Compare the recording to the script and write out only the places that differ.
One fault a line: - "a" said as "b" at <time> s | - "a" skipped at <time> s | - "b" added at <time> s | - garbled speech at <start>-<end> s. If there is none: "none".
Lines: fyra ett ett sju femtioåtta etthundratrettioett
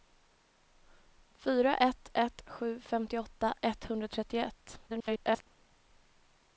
- garbled speech at 4.9-5.5 s